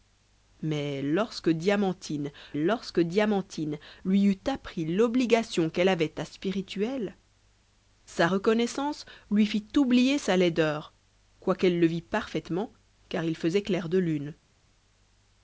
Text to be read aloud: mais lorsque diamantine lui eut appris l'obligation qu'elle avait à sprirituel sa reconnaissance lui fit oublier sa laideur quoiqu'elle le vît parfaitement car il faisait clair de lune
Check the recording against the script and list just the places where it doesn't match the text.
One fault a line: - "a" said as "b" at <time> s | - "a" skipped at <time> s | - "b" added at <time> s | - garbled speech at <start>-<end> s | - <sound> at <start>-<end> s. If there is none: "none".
- "lorsque diamantine" added at 2.6 s